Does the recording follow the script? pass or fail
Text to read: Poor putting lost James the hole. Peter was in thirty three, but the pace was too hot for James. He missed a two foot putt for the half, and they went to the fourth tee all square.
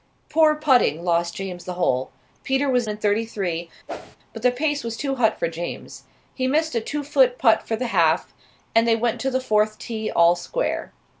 pass